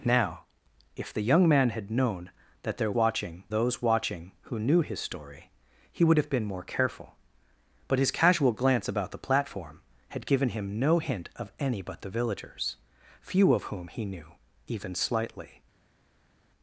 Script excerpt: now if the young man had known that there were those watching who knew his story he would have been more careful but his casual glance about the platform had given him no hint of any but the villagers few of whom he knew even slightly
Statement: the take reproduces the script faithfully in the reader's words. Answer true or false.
false